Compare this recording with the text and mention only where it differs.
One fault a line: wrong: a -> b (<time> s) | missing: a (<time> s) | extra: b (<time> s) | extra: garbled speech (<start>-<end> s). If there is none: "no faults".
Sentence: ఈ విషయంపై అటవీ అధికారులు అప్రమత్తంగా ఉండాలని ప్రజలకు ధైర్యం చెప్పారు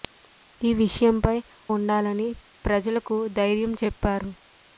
missing: అటవీ అధికారులు అప్రమత్తంగా (1.3 s)